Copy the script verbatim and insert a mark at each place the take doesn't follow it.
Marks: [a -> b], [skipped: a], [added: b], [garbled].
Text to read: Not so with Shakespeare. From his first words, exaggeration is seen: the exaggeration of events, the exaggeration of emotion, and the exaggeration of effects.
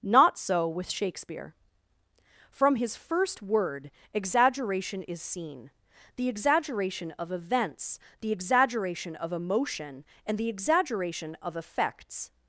Not so with Shakespeare. From his first [words, -> word] exaggeration is seen: the exaggeration of events, the exaggeration of emotion, and the exaggeration of effects.